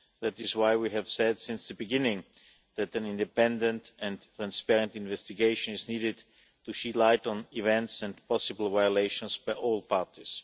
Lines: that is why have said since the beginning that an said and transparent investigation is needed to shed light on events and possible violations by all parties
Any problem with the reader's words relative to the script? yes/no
yes